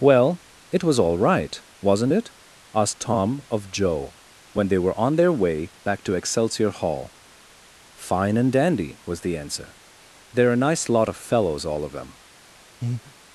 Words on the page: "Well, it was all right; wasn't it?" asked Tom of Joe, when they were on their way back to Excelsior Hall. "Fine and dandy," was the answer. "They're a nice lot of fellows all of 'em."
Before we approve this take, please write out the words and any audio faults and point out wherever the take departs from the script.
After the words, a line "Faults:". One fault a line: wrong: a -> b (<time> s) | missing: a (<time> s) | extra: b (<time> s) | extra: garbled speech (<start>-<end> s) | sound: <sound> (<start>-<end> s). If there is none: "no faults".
"Well, it was all right; wasn't it?" asked Tom of Joe, when they were on their way back to Excelsior Hall. "Fine and dandy," was the answer. "They're a nice lot of fellows all of 'them."
Faults:
wrong: em -> them (11.9 s)
sound: breath (12.8-13.1 s)